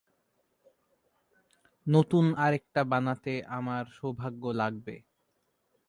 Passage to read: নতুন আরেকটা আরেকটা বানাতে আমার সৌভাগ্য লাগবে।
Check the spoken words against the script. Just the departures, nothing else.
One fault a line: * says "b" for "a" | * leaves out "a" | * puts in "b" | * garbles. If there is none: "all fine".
* leaves out "আরেকটা"